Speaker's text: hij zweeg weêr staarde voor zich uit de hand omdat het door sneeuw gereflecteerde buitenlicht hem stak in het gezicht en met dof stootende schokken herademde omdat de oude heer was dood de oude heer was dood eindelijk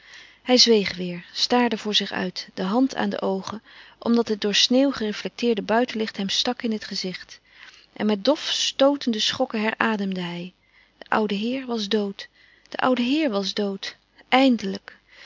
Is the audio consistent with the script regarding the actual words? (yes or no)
no